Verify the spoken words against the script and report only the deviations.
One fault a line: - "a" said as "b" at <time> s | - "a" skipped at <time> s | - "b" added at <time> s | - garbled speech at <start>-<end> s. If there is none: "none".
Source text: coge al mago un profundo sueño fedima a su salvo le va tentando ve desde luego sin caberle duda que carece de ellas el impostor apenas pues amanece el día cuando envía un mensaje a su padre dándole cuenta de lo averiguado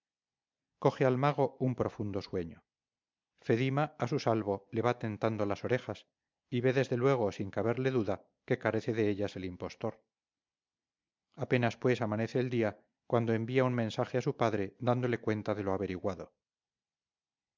- "las orejas y" added at 5.5 s